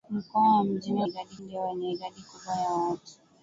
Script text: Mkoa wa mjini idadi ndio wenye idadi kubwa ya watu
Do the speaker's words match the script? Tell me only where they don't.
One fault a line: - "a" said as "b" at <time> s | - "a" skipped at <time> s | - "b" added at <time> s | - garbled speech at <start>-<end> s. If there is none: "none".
none